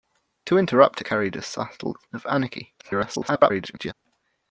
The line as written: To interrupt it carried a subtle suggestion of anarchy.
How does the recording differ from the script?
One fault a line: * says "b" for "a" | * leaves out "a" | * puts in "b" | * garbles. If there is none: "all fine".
* leaves out "it"
* leaves out "suggestion"
* garbles